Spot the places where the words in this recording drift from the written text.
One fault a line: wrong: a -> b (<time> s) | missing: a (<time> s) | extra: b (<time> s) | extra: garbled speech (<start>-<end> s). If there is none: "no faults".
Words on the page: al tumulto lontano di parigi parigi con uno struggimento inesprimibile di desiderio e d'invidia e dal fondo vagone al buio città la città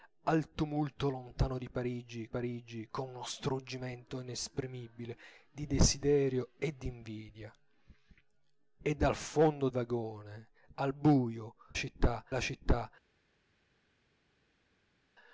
no faults